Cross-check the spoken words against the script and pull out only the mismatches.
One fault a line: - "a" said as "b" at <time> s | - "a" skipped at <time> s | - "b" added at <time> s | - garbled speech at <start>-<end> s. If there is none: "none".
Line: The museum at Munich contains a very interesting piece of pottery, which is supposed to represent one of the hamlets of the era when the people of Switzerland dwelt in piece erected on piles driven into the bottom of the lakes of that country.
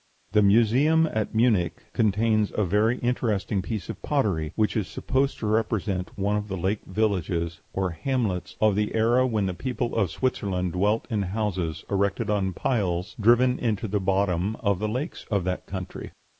- "lake villages or" added at 6.6 s
- "piece" said as "houses" at 11.2 s